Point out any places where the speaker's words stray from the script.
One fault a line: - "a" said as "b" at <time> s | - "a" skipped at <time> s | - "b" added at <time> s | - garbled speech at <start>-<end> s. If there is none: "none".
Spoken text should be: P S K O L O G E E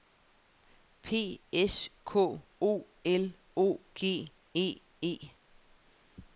none